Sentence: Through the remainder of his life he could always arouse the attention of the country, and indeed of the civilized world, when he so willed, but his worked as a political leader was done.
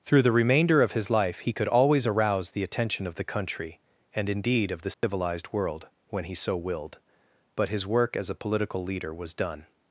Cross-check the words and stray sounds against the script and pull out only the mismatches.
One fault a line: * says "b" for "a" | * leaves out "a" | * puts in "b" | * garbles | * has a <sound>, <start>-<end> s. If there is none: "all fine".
* has a dropout, 4.9-5.0 s
* says "work" for "worked"